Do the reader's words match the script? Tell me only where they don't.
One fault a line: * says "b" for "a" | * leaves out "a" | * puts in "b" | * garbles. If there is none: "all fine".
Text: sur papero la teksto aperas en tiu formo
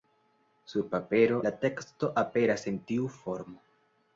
all fine